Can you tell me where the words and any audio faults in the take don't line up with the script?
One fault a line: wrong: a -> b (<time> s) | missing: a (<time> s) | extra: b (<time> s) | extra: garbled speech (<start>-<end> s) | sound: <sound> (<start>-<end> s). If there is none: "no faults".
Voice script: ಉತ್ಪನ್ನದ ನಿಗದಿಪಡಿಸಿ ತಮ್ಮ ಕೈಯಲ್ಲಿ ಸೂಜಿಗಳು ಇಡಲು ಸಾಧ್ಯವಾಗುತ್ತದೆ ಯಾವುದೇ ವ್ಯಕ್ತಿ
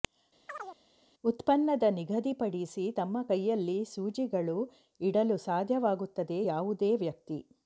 sound: chirp (0.5-0.8 s)